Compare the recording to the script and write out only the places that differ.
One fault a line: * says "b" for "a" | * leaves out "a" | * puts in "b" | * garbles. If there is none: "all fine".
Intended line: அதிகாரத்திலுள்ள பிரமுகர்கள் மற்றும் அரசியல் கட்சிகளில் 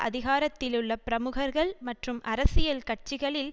all fine